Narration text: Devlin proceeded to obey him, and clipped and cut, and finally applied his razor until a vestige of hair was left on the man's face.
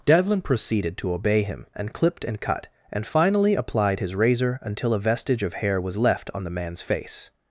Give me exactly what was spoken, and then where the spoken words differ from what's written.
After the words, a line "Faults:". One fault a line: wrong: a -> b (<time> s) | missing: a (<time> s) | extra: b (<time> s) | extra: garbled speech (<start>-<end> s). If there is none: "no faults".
Devlin proceeded to obey him, and clipped and cut, and finally applied his razor until a vestige of hair was left on the man's face.
Faults:
no faults